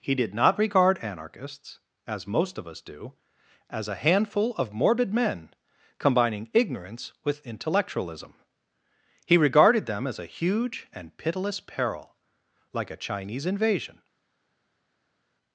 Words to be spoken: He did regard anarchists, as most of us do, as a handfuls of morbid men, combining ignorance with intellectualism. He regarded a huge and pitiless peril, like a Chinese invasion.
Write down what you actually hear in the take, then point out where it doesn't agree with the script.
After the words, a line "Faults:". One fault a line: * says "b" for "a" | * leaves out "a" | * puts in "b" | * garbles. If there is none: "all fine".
He did not regard anarchists, as most of us do, as a handful of morbid men, combining ignorance with intellectualism. He regarded them as a huge and pitiless peril, like a Chinese invasion.
Faults:
* puts in "not"
* says "handful" for "handfuls"
* puts in "them as"